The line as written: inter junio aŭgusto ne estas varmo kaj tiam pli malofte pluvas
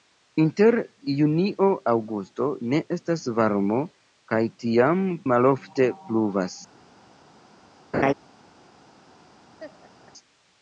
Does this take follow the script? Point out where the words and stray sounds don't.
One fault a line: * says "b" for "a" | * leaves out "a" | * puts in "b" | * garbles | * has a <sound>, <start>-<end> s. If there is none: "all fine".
* leaves out "pli"
* has a laugh, 7.9-8.1 s
* has a laugh, 9.6-10.1 s